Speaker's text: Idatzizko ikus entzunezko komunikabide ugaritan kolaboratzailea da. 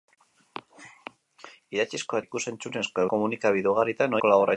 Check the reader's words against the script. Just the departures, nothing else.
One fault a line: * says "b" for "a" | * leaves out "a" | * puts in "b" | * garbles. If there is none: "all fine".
all fine